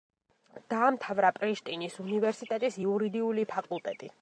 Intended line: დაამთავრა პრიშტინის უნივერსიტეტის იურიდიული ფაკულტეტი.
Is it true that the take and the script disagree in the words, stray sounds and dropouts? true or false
false